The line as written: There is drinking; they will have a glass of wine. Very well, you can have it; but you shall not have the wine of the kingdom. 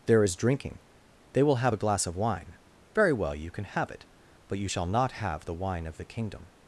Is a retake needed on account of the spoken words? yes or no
no